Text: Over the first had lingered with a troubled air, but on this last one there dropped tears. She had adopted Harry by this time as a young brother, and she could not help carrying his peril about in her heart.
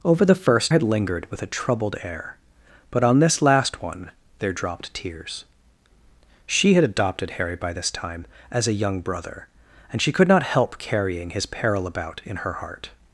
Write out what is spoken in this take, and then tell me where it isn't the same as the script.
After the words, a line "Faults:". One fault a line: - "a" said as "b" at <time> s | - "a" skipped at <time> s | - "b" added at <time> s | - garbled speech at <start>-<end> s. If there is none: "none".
Over the first had lingered with a troubled air, but on this last one there dropped tears. She had adopted Harry by this time as a young brother, and she could not help carrying his peril about in her heart.
Faults:
none